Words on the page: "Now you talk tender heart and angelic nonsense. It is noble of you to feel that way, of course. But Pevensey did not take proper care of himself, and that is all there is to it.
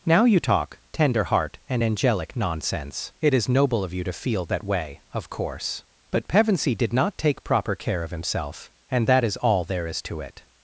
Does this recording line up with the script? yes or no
yes